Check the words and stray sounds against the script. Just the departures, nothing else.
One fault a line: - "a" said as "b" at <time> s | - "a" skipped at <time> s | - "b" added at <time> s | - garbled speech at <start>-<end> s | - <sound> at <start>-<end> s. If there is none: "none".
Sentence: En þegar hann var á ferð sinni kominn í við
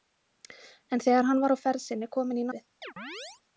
- chirp at 2.8-3.4 s